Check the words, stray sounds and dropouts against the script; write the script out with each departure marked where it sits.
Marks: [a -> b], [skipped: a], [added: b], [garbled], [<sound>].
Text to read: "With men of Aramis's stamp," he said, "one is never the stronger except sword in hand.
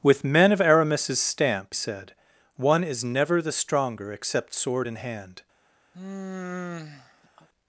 "With men of Aramis's stamp," [skipped: he] said, "one is never the stronger except sword in hand. [sigh]